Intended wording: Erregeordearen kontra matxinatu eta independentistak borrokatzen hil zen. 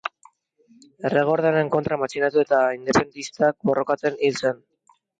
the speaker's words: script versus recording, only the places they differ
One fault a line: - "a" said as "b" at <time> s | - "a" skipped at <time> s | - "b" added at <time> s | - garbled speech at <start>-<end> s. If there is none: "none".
none